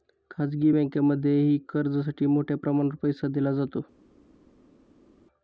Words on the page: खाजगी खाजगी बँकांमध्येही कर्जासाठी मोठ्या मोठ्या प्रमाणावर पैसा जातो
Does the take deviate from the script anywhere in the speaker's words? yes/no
yes